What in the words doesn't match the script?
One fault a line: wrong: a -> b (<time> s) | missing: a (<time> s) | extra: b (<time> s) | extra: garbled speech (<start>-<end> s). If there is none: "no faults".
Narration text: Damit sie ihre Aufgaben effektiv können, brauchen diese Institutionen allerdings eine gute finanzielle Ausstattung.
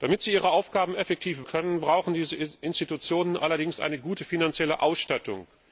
no faults